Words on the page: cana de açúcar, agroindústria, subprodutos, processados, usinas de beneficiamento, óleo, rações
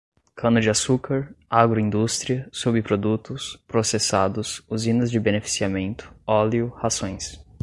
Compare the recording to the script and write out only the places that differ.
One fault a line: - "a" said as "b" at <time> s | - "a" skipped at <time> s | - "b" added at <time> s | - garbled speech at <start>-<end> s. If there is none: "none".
none